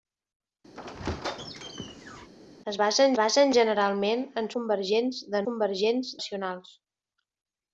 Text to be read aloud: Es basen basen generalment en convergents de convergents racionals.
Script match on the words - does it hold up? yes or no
yes